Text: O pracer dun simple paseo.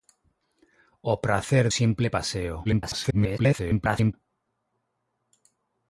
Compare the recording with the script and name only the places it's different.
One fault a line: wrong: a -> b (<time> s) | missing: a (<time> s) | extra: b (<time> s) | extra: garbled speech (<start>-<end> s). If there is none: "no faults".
missing: dun (1.6 s)
extra: garbled speech (2.6-4.1 s)